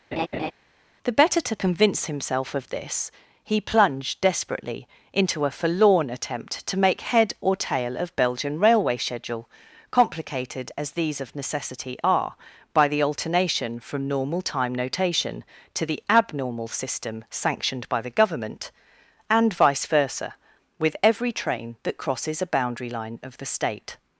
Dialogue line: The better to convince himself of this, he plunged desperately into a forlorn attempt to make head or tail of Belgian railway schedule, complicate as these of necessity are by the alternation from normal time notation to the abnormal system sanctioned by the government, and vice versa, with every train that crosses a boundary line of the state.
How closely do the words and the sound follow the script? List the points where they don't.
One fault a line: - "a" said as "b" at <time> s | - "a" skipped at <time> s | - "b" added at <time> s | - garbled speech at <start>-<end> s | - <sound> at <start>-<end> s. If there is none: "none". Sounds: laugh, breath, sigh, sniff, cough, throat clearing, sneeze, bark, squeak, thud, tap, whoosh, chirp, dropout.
- laugh at 0.1-0.5 s
- "complicate" said as "complicated" at 9.9 s